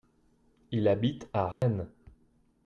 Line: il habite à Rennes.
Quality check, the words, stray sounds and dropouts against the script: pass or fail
fail